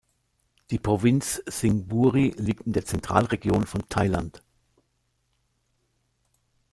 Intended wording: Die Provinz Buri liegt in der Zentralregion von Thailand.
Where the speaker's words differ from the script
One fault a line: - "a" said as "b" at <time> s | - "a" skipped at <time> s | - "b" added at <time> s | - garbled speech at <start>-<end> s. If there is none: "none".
- "Sing" added at 1.5 s